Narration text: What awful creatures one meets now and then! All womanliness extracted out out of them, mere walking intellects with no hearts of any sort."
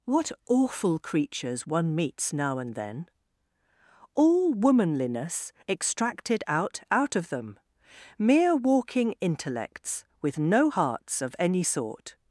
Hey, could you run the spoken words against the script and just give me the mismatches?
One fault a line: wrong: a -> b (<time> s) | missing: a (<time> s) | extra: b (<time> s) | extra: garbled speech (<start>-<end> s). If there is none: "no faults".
no faults